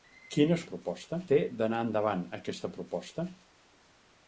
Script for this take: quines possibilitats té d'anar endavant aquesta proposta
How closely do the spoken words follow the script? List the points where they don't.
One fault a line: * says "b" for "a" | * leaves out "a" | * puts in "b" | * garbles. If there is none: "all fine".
* says "proposta" for "possibilitats"